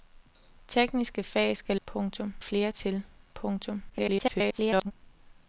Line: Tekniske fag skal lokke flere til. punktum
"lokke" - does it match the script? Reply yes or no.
no